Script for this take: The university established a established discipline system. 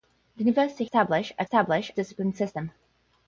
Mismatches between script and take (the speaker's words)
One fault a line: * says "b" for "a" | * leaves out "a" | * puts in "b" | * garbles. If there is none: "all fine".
all fine